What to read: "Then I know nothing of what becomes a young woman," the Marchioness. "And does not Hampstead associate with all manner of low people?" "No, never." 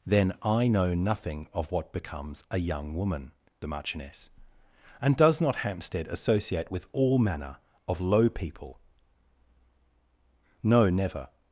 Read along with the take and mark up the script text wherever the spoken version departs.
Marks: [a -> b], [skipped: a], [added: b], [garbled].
"Then I know nothing of what becomes a young woman," the Marchioness. "And does not Hampstead associate with all manner of low people?" "No, never."